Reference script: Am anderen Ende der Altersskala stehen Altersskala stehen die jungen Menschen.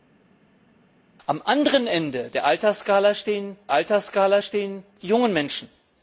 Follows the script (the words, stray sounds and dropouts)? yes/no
yes